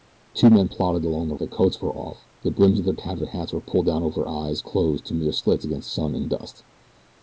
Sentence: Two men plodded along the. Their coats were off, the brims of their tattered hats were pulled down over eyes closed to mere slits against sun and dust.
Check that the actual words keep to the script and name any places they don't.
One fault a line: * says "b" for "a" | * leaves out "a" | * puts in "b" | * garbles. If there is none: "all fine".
all fine